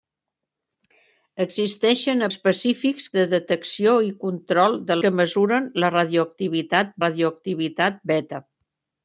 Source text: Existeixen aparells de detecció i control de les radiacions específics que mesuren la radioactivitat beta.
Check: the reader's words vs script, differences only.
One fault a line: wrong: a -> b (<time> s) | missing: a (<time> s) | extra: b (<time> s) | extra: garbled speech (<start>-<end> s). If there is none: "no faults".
wrong: aparells -> específics (2.3 s)
missing: les radiacions específics (5.0 s)
extra: radioactivitat (7.1 s)